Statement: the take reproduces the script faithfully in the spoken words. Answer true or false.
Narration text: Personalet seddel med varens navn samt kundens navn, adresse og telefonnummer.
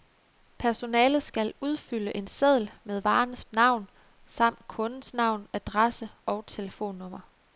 false